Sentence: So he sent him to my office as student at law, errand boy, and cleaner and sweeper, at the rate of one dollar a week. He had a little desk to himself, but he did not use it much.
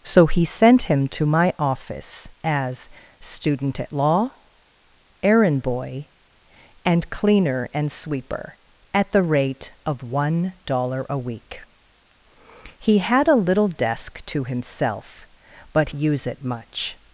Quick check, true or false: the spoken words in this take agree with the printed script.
false